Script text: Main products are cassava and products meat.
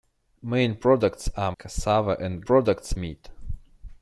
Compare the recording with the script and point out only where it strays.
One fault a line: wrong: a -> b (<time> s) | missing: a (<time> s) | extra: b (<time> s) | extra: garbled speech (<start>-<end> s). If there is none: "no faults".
no faults